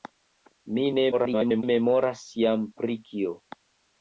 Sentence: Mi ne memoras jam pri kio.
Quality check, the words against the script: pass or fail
fail